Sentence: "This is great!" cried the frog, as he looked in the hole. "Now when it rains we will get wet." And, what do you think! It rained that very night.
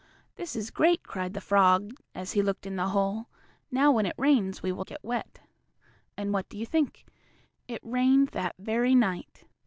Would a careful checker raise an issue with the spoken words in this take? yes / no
no